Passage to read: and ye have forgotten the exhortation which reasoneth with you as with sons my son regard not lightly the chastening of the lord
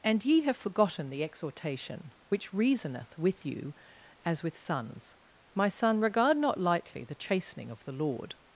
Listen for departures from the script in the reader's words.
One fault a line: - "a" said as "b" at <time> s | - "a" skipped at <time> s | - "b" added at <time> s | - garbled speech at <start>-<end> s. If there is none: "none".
none